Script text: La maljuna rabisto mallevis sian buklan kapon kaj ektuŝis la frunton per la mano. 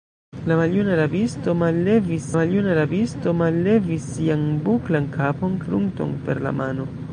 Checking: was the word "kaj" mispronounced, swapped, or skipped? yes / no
yes